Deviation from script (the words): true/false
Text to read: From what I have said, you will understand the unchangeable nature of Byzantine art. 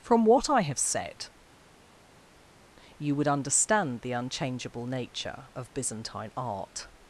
true